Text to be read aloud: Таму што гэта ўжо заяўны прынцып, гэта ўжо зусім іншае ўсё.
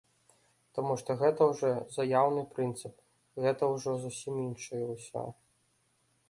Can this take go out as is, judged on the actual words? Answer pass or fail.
pass